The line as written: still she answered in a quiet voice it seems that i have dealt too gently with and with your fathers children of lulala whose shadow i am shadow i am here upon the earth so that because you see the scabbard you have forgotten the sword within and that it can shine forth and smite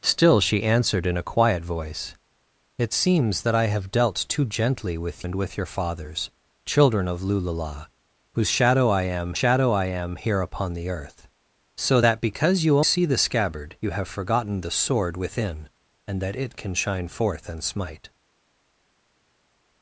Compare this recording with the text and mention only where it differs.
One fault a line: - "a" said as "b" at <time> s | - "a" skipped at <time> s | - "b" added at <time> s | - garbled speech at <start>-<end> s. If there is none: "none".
none